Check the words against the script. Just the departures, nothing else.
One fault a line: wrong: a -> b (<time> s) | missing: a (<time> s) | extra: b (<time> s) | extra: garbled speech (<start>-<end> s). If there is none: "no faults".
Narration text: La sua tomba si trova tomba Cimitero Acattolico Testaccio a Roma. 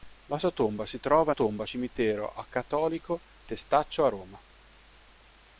no faults